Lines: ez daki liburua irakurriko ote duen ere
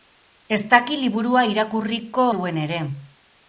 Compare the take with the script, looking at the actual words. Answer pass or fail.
fail